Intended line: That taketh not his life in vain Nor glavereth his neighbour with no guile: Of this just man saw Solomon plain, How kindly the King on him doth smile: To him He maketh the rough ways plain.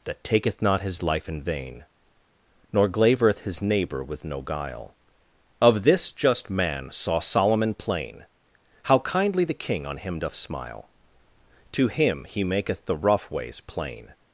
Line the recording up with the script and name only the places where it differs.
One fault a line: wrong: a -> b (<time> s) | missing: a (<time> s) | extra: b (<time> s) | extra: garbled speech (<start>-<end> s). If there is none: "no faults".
no faults